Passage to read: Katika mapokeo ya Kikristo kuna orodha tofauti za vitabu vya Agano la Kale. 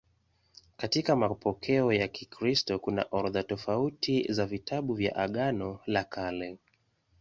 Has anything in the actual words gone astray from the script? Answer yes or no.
no